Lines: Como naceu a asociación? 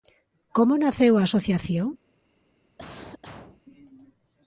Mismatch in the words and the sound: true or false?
true